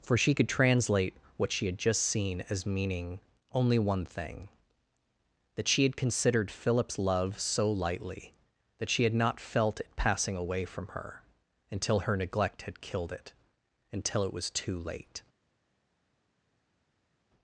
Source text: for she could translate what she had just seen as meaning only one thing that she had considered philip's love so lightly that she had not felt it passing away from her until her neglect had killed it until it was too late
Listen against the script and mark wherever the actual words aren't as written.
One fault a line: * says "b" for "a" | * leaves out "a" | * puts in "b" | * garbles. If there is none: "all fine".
all fine